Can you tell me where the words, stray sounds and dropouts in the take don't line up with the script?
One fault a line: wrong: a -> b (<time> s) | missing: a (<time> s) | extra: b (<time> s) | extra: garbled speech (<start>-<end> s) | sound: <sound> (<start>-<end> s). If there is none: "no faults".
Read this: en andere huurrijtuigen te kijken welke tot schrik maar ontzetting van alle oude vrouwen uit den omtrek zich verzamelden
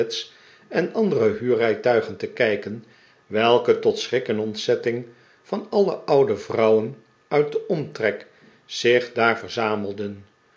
wrong: maar -> en (4.3 s)
extra: daar (9.1 s)